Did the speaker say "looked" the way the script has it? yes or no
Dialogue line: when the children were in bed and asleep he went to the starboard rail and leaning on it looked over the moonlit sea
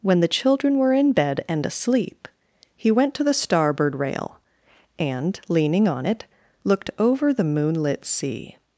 yes